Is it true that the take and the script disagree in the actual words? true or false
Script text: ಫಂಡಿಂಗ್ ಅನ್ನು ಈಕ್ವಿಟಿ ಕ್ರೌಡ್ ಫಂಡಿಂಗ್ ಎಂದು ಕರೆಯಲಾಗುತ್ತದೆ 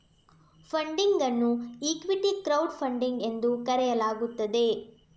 false